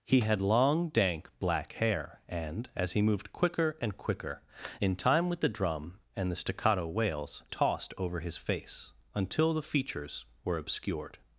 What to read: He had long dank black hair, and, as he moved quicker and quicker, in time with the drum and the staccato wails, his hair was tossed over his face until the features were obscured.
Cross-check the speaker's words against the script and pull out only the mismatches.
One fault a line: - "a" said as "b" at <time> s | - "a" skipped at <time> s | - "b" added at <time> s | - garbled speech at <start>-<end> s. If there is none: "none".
- "his hair was" skipped at 7.4 s